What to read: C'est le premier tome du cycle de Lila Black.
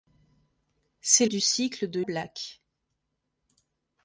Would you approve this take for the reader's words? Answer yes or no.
no